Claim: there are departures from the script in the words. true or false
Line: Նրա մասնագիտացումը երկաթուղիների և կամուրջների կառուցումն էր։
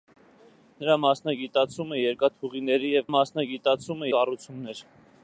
true